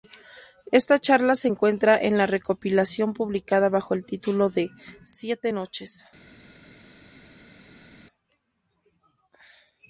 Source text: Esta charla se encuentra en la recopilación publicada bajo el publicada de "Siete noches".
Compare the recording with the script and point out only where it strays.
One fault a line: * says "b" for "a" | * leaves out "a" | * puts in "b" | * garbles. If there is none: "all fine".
* says "título" for "publicada"